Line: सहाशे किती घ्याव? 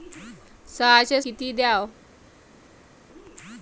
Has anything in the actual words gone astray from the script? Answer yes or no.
no